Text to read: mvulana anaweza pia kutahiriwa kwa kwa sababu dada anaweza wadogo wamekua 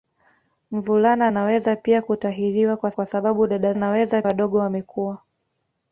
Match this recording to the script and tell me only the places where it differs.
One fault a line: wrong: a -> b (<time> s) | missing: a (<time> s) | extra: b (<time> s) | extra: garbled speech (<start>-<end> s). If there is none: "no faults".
no faults